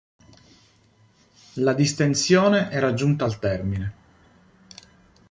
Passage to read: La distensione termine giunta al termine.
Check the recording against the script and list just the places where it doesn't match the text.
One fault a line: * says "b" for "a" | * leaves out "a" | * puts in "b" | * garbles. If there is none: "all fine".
* says "era" for "termine"